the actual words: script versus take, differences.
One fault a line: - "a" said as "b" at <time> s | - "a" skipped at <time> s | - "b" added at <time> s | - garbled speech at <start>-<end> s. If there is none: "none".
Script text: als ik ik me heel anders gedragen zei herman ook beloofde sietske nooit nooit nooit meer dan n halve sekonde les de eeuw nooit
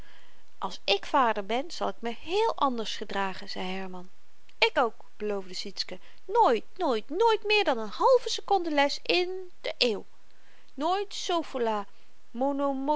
- "vader ben zal" added at 1.0 s
- "ik" added at 4.6 s
- "in" added at 9.0 s